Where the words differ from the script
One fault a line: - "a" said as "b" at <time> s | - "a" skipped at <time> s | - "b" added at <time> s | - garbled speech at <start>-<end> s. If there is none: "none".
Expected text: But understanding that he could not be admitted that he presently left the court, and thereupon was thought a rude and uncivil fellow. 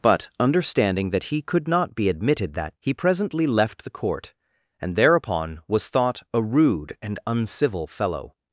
none